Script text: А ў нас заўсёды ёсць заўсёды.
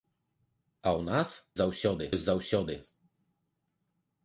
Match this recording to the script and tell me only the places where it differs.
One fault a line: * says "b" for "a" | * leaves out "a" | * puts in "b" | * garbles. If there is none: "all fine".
all fine